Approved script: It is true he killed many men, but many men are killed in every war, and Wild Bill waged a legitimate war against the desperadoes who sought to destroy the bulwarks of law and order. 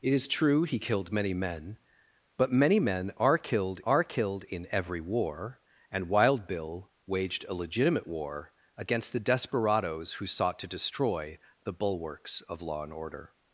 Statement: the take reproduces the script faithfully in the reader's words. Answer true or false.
false